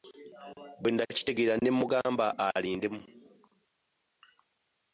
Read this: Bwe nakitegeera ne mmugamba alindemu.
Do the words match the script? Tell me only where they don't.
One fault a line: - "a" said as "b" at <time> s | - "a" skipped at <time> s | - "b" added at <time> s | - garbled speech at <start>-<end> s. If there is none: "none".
none